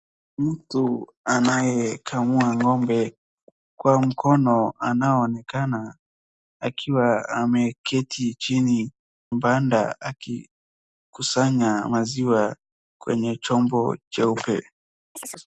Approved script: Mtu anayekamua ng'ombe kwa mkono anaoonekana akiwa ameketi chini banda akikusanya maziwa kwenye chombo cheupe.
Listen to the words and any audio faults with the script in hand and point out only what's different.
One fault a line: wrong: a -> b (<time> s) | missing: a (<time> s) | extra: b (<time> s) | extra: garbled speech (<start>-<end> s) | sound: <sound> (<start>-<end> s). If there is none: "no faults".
sound: chirp (15.1-15.5 s)